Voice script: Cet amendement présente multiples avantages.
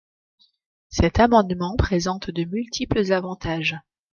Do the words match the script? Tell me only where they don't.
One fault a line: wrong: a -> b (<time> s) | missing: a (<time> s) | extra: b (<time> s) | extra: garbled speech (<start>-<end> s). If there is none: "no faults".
extra: de (2.3 s)